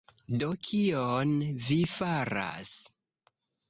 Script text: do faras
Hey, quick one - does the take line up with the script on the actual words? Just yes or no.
no